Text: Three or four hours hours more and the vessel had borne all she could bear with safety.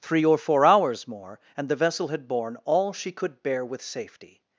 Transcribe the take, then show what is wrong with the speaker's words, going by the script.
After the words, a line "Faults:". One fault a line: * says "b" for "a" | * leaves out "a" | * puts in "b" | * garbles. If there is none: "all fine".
Three or four hours more and the vessel had borne all she could bear with safety.
Faults:
* leaves out "hours"